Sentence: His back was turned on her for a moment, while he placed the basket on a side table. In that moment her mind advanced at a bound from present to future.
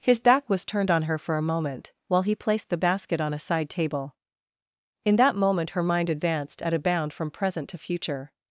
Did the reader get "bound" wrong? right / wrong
right